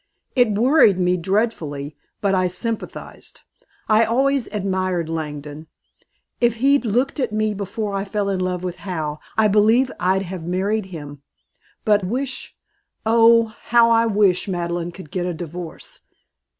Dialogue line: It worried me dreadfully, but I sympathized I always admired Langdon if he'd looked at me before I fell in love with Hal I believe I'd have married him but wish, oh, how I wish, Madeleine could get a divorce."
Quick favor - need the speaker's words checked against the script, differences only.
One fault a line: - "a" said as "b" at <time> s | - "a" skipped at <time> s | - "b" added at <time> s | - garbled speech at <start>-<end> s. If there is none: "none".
none